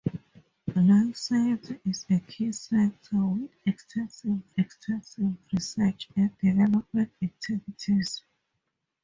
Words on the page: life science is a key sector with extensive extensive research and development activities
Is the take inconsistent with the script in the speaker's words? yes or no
no